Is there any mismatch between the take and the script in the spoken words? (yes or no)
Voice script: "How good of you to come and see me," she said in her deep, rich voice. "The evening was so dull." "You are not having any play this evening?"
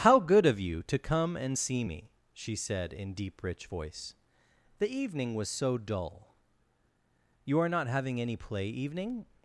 yes